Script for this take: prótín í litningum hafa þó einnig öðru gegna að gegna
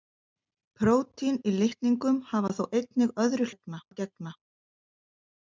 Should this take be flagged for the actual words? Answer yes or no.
no